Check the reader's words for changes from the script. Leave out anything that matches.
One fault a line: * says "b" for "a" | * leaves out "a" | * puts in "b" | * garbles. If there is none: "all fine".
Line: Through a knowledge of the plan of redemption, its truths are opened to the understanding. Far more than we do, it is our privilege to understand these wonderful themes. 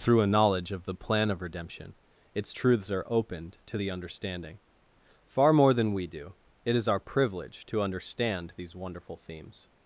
all fine